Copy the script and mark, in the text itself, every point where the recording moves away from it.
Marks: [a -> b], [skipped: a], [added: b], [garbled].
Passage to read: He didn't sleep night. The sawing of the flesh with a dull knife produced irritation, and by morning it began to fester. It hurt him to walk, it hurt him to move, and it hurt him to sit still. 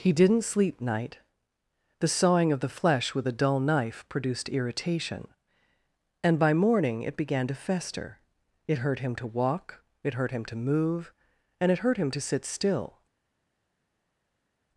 He didn't sleep night. The sawing of the flesh with a dull knife produced irritation, and by morning it began to fester. It hurt him to walk, it hurt him to move, and it hurt him to sit still.